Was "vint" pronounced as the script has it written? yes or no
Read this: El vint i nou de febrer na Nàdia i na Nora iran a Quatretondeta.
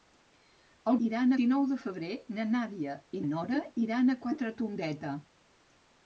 no